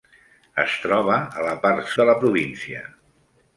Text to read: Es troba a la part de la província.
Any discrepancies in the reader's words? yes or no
no